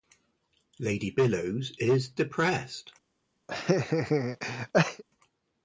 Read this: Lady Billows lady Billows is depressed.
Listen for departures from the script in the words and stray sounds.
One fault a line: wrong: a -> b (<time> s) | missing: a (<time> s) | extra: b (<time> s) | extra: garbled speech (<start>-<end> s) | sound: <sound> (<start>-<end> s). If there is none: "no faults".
missing: lady Billows (1.8 s)
sound: laugh (3.5-5.0 s)